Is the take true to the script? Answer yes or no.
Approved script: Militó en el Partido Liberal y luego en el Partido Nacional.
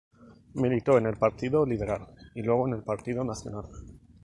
yes